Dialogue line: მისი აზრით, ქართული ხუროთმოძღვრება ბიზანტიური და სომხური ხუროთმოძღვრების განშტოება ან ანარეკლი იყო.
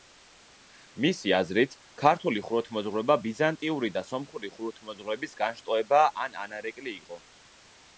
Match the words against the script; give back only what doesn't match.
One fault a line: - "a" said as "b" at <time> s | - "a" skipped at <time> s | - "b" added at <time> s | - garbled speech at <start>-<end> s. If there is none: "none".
none